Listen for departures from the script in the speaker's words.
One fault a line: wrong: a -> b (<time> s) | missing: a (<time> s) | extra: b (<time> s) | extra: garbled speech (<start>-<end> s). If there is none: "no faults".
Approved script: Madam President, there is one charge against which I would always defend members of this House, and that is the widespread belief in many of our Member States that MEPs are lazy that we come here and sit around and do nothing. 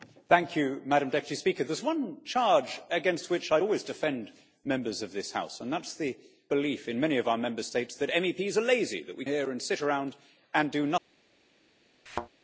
missing: widespread (6.2 s)
missing: come (9.2 s)